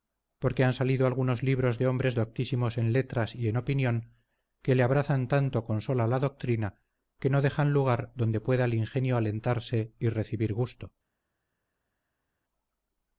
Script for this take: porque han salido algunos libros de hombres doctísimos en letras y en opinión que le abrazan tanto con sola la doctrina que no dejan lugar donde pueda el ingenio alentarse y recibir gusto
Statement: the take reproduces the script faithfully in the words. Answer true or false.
true